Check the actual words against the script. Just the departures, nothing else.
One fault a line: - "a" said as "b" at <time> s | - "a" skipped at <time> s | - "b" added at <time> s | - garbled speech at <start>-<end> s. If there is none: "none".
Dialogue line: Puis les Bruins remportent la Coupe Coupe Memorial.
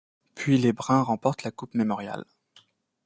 - "Coupe" skipped at 1.8 s